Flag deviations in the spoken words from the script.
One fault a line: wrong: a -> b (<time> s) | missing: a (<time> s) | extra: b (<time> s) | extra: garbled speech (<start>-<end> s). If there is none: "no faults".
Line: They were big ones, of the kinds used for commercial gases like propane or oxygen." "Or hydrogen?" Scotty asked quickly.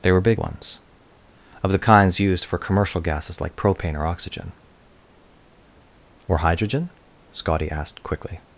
no faults